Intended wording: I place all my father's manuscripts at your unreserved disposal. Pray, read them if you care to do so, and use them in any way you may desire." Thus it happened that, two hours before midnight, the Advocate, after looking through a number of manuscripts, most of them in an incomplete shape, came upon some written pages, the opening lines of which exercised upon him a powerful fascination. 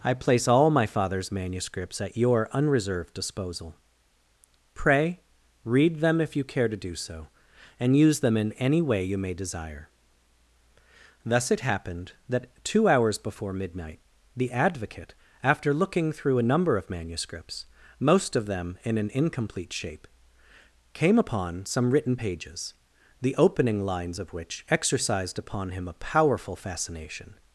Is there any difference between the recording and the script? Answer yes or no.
no